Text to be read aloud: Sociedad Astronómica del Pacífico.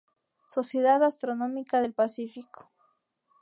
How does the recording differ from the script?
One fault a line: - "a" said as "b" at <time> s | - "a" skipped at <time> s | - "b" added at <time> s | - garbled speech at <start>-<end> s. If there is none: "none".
none